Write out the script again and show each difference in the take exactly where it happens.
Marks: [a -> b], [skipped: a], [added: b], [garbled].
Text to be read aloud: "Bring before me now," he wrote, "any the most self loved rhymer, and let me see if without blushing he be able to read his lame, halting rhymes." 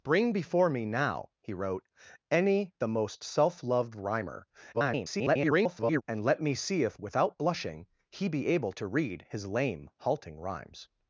"Bring before me now," he wrote, "any the most self loved rhymer, [garbled] and let me see if without blushing he be able to read his lame, halting rhymes."